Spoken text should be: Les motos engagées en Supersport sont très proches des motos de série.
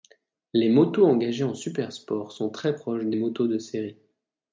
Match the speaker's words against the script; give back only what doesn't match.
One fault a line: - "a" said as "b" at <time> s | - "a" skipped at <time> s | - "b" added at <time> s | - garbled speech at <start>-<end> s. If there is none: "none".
none